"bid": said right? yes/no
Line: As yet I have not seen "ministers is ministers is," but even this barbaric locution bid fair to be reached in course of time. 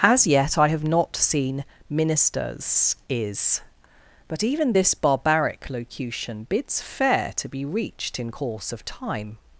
no